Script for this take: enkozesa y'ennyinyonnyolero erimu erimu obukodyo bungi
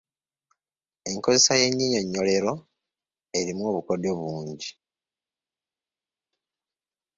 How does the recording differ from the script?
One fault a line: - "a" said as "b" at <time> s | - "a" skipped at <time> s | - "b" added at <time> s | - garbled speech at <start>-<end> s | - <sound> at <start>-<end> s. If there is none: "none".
- "erimu" skipped at 3.6 s